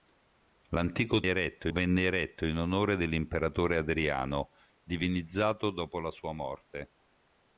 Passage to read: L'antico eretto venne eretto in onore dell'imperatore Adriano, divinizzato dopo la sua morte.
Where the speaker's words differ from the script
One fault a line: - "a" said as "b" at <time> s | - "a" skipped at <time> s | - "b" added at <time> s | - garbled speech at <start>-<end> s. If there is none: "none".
none